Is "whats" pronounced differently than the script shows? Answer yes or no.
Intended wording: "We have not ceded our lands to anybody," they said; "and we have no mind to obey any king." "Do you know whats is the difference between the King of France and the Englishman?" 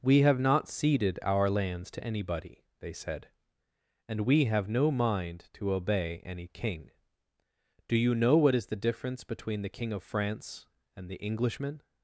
yes